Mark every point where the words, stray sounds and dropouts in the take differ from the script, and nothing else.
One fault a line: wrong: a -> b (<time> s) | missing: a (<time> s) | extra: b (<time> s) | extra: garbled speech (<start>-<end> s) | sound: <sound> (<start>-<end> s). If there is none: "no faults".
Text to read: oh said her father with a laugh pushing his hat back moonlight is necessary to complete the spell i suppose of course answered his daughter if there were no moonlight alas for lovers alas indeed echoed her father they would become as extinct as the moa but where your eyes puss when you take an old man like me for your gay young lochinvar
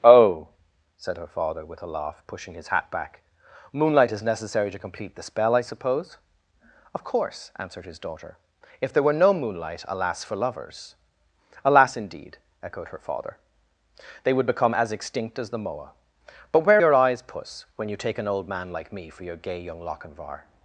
no faults